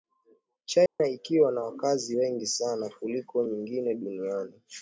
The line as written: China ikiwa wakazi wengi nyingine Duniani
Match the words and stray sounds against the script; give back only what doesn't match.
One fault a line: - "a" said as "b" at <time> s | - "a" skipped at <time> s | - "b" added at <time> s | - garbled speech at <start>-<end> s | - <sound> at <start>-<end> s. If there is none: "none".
- dropout at 0.9-1.0 s
- "na" added at 1.5 s
- "sana kuliko" added at 2.5 s